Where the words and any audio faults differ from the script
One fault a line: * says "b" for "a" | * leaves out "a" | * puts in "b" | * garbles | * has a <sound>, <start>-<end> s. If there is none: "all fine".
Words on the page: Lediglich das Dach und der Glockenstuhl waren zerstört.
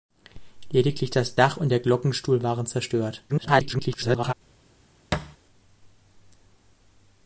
* garbles
* has a thud, 5.1-5.4 s